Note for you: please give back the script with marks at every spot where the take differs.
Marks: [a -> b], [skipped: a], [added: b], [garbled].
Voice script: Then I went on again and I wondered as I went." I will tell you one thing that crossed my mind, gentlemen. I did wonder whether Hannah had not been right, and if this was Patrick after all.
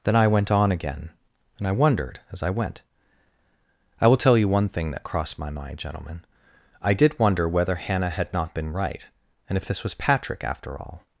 Then I went on again and I wondered as I went." I will tell you one thing that crossed my mind, gentlemen. I did wonder whether Hannah had not been right, and if this was Patrick after all.